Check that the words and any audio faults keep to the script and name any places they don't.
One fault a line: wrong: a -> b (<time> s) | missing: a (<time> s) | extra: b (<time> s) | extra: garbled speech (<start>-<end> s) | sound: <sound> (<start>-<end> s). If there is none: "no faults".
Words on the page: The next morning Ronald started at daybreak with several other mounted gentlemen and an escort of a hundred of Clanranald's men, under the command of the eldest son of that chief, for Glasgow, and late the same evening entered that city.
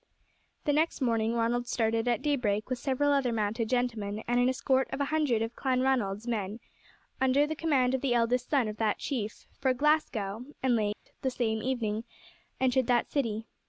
sound: dropout (10.9-11.1 s)